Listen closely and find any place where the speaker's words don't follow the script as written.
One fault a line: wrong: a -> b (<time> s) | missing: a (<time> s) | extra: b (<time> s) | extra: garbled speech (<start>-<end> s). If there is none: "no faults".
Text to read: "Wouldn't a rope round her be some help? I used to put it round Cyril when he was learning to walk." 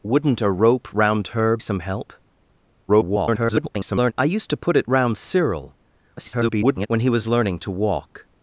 missing: be (1.6 s)
extra: garbled speech (2.9-4.1 s)
extra: garbled speech (6.2-6.9 s)